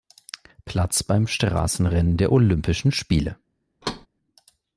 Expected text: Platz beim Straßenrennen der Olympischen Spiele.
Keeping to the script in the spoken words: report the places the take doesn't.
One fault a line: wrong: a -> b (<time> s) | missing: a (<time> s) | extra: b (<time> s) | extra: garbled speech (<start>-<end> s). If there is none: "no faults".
no faults